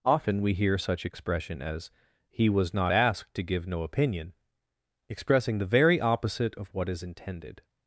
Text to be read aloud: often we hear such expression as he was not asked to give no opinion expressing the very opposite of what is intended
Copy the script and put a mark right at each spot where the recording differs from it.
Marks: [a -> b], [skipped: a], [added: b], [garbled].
often we hear such expression as he was not asked to give no opinion expressing the very opposite of what is intended